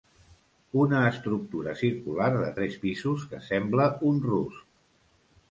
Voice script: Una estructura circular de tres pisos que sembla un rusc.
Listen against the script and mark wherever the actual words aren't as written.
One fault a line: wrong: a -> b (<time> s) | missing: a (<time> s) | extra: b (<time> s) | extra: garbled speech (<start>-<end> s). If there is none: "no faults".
no faults